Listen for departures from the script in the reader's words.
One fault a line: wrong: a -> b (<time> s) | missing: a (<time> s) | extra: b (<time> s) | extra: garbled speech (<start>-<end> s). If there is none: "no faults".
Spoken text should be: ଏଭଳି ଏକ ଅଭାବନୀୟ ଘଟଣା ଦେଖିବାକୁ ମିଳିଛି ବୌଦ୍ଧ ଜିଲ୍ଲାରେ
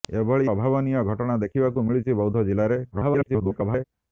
missing: ଏକ (0.5 s)
extra: garbled speech (2.9-3.8 s)